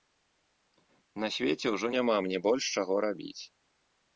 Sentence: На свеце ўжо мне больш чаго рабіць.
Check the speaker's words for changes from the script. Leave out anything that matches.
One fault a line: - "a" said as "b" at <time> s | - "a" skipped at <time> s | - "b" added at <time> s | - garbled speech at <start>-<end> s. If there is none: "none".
- "няма" added at 2.0 s